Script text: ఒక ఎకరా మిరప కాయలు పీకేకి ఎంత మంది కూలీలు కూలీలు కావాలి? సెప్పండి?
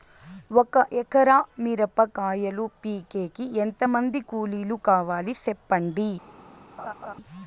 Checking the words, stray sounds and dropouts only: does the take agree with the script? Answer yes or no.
no